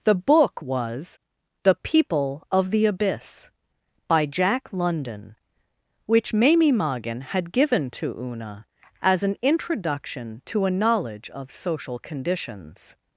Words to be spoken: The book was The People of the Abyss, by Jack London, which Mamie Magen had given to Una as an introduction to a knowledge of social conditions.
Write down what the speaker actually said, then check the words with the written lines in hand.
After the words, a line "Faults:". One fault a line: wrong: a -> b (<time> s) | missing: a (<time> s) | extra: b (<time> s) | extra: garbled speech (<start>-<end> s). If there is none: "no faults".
The book was The People of the Abyss, by Jack London, which Mamie Magen had given to Una as an introduction to a knowledge of social conditions.
Faults:
no faults